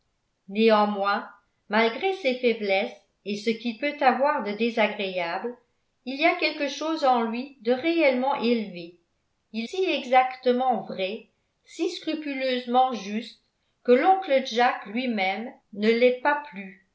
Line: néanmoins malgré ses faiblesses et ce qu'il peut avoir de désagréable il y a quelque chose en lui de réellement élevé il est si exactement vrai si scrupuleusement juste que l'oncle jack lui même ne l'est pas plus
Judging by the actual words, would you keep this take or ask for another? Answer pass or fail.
fail